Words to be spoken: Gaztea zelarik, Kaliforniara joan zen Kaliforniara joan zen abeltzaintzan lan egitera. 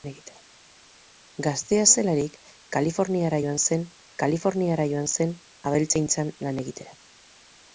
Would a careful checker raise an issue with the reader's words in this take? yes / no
no